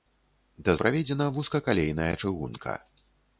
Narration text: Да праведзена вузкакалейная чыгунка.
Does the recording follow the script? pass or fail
pass